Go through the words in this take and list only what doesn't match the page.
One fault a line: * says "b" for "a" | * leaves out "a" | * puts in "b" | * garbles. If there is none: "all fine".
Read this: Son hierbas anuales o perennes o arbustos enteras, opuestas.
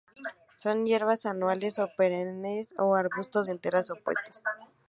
all fine